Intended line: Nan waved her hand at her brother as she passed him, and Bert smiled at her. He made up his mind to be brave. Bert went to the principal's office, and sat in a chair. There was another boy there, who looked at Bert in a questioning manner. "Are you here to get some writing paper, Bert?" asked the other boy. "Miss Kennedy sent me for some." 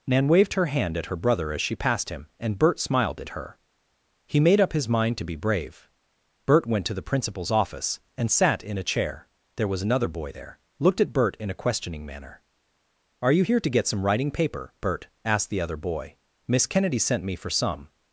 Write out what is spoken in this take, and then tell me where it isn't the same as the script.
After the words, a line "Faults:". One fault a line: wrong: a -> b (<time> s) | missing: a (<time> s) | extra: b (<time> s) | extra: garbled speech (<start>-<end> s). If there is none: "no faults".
Nan waved her hand at her brother as she passed him, and Bert smiled at her. He made up his mind to be brave. Bert went to the principal's office, and sat in a chair. There was another boy there, looked at Bert in a questioning manner. "Are you here to get some writing paper, Bert?" asked the other boy. "Miss Kennedy sent me for some."
Faults:
missing: who (10.6 s)